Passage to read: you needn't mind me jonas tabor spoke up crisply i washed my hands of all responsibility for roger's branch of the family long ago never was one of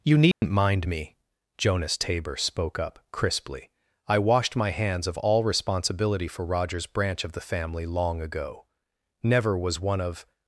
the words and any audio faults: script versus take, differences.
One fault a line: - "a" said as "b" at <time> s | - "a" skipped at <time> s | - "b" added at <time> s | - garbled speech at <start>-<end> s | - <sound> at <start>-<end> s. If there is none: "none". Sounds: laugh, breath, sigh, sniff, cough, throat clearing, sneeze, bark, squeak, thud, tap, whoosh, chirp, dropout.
- dropout at 0.3-0.4 s